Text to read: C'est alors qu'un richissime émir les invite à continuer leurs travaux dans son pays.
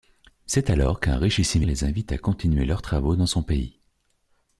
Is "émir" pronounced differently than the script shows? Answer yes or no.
yes